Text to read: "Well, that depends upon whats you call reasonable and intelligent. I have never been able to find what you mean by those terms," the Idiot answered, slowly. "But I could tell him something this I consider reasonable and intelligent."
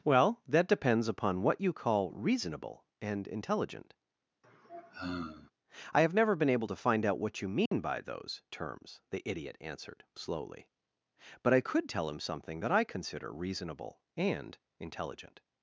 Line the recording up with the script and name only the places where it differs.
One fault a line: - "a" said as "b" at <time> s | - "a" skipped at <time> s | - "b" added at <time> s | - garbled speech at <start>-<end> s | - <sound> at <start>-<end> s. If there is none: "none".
- "whats" said as "what" at 1.4 s
- sigh at 4.4-5.5 s
- "out" added at 7.1 s
- dropout at 7.7-7.7 s
- "this" said as "that" at 12.6 s